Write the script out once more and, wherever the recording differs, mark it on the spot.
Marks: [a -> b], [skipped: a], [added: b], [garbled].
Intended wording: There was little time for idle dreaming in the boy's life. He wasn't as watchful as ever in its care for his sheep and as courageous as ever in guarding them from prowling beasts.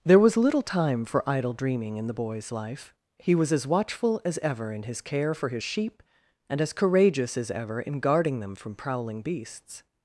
There was little time for idle dreaming in the boy's life. He [wasn't -> was] as watchful as ever in [its -> his] care for his sheep and as courageous as ever in guarding them from prowling beasts.